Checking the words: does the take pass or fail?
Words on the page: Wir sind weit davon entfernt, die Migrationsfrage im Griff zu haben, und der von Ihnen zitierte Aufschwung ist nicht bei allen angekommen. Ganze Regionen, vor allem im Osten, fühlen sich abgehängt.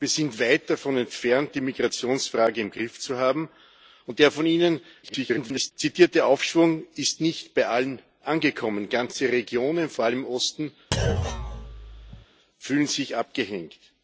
fail